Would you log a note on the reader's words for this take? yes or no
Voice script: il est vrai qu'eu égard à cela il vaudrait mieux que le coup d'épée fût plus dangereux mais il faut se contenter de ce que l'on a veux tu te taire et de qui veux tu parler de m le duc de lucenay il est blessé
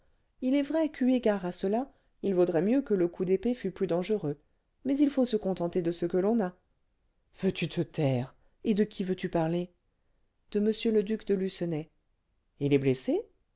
no